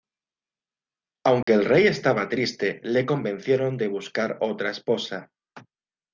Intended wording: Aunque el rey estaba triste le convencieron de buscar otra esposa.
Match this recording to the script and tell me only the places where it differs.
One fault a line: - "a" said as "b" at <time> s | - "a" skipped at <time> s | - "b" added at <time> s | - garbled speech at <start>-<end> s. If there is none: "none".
none